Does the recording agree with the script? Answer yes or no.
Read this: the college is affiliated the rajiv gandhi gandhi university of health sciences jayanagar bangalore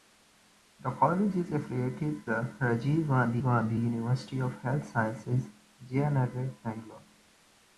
yes